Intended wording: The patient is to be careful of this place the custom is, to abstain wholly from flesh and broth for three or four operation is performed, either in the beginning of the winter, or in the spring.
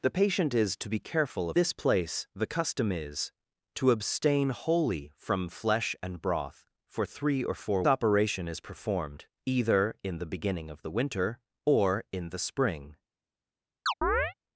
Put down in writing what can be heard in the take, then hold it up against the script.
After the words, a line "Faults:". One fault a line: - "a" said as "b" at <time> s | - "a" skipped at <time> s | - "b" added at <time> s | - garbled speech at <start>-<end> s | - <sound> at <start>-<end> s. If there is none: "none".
The patient is to be careful of this place the custom is, to abstain wholly from flesh and broth for three or four operation is performed, either in the beginning of the winter, or in the spring.
Faults:
- chirp at 13.9-14.3 s